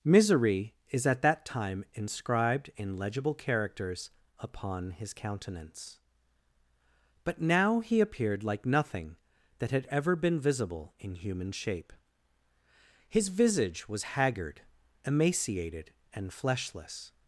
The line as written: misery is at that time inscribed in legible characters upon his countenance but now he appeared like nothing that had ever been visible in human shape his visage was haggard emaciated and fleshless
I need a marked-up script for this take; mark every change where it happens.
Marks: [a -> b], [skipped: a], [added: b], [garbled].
misery is at that time inscribed in legible characters upon his countenance but now he appeared like nothing that had ever been visible in human shape his visage was haggard emaciated and fleshless